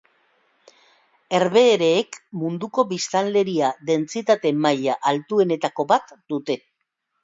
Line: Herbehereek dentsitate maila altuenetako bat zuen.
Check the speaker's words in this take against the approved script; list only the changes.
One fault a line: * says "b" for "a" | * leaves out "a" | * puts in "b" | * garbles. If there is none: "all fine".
* puts in "munduko biztanleria"
* says "dute" for "zuen"